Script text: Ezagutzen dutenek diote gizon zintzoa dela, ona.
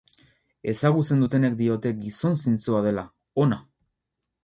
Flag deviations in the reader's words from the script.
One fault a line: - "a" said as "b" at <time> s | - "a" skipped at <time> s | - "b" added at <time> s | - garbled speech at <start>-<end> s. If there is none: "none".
none